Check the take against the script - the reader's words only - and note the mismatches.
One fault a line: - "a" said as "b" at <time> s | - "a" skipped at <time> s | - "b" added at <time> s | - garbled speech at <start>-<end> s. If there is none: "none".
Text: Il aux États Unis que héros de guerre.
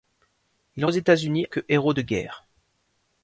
none